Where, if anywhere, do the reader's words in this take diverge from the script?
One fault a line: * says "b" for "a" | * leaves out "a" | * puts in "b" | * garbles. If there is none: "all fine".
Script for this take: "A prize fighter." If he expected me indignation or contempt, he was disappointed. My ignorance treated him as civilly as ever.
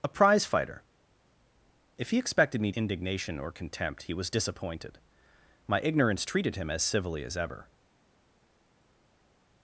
all fine